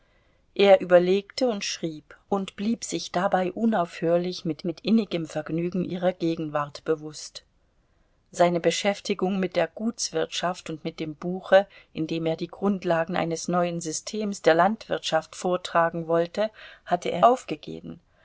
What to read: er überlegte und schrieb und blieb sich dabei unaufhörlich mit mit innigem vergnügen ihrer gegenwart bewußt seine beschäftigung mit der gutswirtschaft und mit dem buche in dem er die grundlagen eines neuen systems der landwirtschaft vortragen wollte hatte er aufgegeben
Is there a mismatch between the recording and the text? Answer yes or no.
no